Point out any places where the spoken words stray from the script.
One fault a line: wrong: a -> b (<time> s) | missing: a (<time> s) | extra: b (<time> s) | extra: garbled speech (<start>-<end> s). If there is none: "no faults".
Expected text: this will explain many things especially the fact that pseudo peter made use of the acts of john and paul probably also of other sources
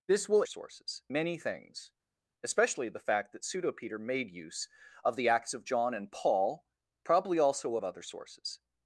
wrong: explain -> sources (0.4 s)